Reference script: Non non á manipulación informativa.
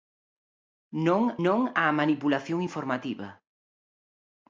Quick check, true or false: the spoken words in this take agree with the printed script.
true